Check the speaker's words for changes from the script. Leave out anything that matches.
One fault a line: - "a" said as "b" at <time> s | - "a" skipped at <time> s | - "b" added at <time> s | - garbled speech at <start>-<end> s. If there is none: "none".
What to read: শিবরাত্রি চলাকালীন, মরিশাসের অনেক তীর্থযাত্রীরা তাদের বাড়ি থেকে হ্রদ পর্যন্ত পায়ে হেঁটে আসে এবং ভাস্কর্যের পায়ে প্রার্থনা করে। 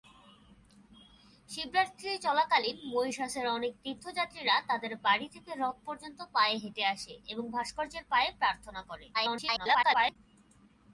- garbled speech at 9.1-10.2 s